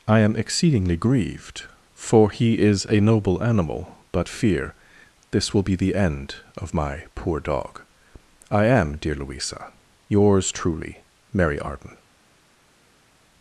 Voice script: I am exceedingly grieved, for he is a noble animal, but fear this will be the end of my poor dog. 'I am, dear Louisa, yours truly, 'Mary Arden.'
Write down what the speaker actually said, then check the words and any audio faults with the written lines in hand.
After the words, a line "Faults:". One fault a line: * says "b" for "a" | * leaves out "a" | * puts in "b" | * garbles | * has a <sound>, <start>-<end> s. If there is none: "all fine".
I am exceedingly grieved, for he is a noble animal, but fear this will be the end of my poor dog. 'I am, dear Louisa, yours truly, 'Mary Arden.'
Faults:
all fine